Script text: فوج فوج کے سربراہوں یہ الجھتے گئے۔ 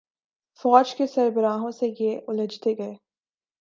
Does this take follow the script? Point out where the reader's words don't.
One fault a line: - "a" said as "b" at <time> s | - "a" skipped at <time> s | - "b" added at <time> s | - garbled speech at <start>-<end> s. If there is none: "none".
- "فوج" skipped at 0.9 s
- "سے" added at 1.7 s